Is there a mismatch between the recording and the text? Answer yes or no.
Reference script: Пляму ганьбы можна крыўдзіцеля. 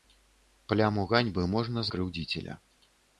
no